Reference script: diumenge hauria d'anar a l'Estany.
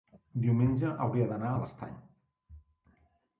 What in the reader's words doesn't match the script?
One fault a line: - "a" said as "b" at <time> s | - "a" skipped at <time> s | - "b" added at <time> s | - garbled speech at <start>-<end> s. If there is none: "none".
none